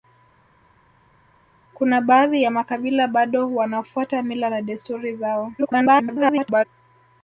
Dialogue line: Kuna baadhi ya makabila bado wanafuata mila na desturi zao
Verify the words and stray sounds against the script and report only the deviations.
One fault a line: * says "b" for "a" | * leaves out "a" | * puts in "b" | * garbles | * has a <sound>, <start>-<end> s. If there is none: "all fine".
* garbles